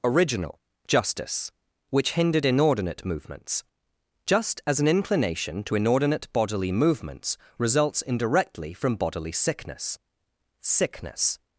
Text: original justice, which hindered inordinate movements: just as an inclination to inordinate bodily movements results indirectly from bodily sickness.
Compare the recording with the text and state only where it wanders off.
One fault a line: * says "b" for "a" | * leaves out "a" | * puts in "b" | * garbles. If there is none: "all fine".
* puts in "sickness"